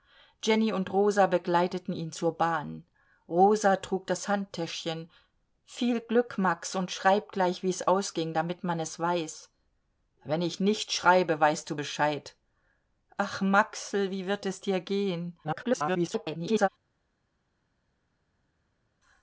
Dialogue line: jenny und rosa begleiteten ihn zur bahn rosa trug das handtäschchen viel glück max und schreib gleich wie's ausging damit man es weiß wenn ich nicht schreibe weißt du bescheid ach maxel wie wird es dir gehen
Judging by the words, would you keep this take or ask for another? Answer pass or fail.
fail